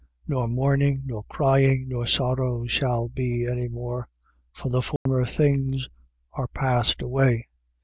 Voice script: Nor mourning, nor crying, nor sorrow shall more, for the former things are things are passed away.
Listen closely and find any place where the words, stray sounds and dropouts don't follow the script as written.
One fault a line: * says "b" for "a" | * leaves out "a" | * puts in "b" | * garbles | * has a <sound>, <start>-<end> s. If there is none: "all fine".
* puts in "be any"
* has a dropout, 5.0-5.1 s
* leaves out "things are"